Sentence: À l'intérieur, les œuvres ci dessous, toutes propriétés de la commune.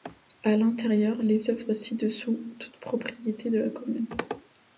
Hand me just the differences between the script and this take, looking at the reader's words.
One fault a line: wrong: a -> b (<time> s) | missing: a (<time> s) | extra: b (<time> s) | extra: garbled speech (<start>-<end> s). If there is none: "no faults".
no faults